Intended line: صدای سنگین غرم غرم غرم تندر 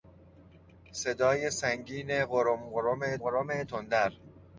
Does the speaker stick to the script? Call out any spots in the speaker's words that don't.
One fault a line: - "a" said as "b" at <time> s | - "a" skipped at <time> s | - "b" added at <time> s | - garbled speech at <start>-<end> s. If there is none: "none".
none